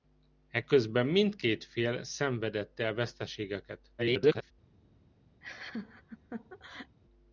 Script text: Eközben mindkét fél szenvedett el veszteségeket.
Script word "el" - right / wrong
right